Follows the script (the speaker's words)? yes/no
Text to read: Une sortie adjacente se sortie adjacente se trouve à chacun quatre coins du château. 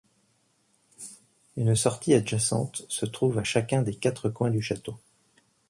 no